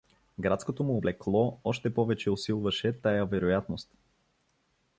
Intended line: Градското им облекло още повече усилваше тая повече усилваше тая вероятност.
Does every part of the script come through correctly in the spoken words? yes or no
no